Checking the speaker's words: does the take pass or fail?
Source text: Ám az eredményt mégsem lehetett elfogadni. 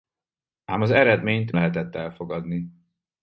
fail